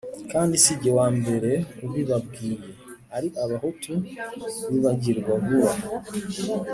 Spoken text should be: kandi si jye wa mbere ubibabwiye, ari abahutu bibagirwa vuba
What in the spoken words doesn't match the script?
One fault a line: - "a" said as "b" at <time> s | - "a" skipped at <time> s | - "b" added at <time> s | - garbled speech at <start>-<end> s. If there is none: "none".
none